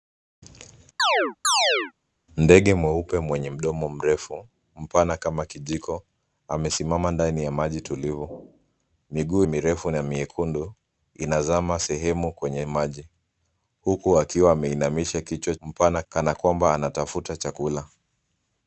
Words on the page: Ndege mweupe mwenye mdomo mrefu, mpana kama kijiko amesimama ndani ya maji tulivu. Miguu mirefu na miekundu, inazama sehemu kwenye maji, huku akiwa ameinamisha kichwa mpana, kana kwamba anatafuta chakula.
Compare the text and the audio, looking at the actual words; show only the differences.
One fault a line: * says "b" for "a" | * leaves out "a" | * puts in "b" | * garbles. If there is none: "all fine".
all fine